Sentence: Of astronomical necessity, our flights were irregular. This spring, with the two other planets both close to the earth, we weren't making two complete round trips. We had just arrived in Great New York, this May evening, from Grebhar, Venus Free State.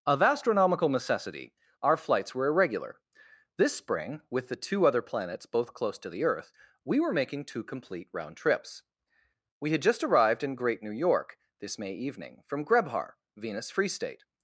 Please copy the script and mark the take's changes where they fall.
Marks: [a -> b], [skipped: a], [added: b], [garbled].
Of astronomical necessity, our flights were irregular. This spring, with the two other planets both close to the earth, we [weren't -> were] making two complete round trips. We had just arrived in Great New York, this May evening, from Grebhar, Venus Free State.